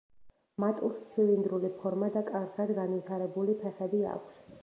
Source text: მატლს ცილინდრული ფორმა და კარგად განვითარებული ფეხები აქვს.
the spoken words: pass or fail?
pass